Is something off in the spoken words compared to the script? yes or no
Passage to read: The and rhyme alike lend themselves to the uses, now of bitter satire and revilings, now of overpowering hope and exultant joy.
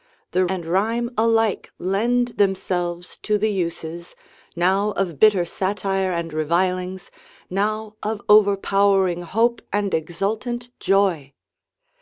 no